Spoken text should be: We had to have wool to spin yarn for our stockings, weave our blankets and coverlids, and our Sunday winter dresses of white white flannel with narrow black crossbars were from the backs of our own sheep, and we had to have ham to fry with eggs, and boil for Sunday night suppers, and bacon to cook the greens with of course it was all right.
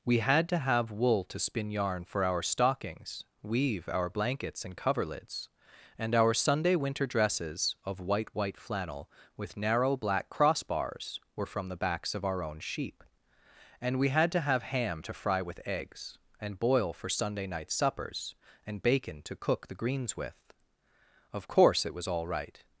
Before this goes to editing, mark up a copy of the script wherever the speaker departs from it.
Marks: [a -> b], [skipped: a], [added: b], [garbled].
We had to have wool to spin yarn for our stockings, weave our blankets and coverlids, and our Sunday winter dresses of white white flannel with narrow black crossbars were from the backs of our own sheep, and we had to have ham to fry with eggs, and boil for Sunday night suppers, and bacon to cook the greens with of course it was all right.